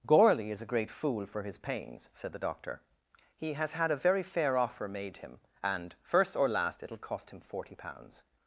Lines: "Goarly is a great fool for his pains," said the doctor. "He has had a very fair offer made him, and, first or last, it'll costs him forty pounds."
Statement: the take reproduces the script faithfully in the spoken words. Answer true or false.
false